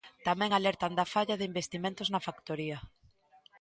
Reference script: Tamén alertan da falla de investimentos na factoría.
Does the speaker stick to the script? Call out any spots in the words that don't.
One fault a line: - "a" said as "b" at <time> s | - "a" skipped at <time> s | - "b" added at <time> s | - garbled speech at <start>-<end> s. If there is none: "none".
none